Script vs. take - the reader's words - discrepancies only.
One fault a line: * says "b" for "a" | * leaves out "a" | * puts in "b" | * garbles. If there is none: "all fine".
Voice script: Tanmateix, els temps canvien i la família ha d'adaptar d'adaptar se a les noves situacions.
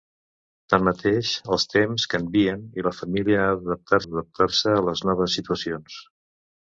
all fine